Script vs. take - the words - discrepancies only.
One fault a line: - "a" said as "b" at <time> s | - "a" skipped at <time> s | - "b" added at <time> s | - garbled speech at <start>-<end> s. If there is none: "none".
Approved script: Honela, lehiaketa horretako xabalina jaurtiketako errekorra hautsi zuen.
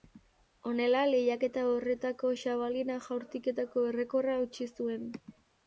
none